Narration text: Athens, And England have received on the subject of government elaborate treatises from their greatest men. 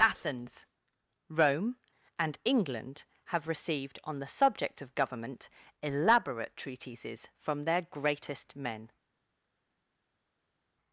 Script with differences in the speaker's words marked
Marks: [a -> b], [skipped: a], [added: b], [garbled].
Athens, [added: Rome] And England have received on the subject of government elaborate treatises from their greatest men.